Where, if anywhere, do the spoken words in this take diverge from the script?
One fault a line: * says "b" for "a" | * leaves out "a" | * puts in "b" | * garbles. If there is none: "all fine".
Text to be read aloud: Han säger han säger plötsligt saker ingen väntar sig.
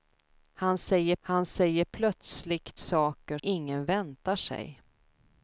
all fine